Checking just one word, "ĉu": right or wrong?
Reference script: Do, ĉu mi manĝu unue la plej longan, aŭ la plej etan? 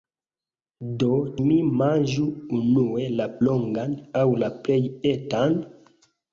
wrong